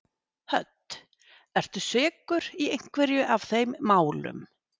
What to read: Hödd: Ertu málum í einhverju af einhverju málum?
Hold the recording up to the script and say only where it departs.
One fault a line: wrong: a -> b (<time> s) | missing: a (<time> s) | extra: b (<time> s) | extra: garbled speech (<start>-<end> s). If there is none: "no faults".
wrong: málum -> sekur (1.9 s)
wrong: einhverju -> þeim (3.5 s)